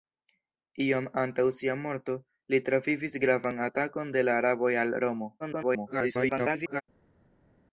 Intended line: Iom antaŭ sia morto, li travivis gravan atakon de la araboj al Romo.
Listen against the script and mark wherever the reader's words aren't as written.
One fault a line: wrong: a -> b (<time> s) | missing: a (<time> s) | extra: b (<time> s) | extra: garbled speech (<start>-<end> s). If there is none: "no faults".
extra: garbled speech (5.4-6.8 s)